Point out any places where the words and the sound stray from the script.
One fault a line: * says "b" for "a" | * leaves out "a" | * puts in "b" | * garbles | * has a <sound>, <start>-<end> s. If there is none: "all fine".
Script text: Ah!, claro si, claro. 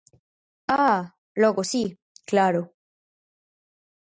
* says "logo" for "claro"